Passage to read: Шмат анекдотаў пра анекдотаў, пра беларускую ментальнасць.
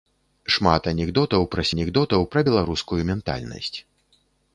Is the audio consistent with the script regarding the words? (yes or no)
yes